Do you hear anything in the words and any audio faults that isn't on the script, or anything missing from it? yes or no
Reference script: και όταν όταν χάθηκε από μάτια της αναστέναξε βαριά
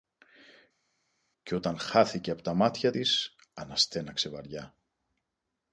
yes